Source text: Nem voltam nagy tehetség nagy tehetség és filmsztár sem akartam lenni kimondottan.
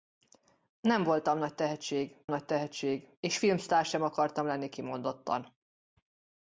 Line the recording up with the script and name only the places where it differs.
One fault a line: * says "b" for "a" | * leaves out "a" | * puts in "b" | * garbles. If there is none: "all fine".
all fine